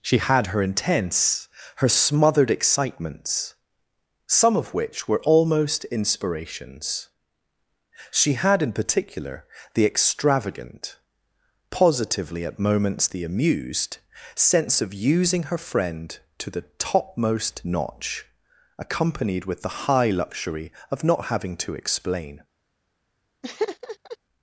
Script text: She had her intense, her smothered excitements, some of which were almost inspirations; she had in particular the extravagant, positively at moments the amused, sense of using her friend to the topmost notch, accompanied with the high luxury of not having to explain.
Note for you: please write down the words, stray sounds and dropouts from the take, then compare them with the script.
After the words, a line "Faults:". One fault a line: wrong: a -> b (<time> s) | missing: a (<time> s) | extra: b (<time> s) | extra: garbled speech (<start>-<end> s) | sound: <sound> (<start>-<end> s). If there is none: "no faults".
She had her intense, her smothered excitements, some of which were almost inspirations; she had in particular the extravagant, positively at moments the amused, sense of using her friend to the topmost notch, accompanied with the high luxury of not having to explain.
Faults:
sound: laugh (23.4-24.2 s)